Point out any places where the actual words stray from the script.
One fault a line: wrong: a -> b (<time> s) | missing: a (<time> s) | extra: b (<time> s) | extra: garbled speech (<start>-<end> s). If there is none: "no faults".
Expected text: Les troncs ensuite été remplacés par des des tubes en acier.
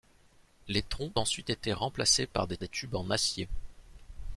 no faults